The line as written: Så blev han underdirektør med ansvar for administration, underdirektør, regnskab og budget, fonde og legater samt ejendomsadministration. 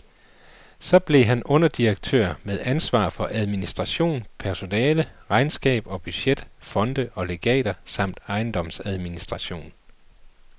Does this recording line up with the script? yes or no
no